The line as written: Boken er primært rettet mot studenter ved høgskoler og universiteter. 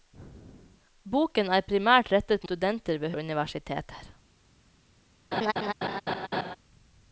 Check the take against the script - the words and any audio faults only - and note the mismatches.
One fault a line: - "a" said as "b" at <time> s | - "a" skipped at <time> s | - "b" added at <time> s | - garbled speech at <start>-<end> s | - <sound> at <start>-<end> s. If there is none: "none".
- "mot" skipped at 2.5 s
- "høgskoler" skipped at 3.2 s
- laugh at 5.3-6.6 s